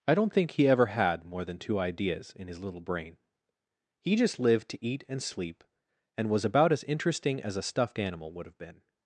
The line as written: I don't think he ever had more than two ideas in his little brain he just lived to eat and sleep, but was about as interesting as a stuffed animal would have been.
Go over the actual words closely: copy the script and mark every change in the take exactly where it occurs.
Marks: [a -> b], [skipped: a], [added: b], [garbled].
I don't think he ever had more than two ideas in his little brain he just lived to eat and sleep, [but -> and] was about as interesting as a stuffed animal would have been.